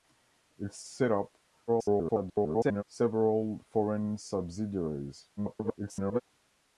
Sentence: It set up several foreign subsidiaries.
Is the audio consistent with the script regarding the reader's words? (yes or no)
no